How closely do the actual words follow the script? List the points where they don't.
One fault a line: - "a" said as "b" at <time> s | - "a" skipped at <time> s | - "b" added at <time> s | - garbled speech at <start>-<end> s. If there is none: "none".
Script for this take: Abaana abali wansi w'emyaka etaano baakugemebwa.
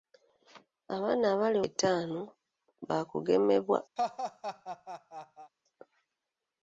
- "wansi w'emyaka" skipped at 1.6 s